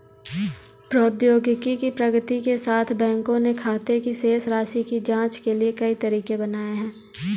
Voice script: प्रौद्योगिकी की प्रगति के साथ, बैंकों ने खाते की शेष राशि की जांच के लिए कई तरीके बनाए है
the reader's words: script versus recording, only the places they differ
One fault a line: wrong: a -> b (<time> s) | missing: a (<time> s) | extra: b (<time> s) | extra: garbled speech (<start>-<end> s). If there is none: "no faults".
no faults